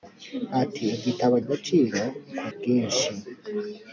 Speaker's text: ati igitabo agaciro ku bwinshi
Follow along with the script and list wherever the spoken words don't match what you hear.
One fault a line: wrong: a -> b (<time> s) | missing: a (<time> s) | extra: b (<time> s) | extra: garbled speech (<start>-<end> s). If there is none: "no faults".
no faults